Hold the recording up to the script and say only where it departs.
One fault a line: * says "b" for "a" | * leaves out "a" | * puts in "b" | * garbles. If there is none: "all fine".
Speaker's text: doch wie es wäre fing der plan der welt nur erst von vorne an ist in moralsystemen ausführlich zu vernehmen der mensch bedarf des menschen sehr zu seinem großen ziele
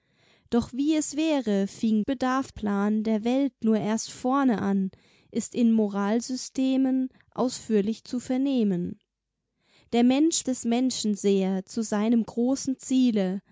* says "bedarf" for "der"
* leaves out "von"
* leaves out "bedarf"